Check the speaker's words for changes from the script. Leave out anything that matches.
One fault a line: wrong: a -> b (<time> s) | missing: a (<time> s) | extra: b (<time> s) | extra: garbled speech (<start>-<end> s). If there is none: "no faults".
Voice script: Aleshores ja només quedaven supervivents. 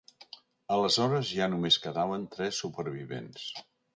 extra: tres (2.4 s)